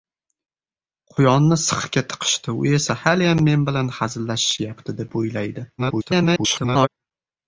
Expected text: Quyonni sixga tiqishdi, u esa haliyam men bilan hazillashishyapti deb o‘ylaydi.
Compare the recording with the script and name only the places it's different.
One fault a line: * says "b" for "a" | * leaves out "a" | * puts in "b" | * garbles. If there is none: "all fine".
* garbles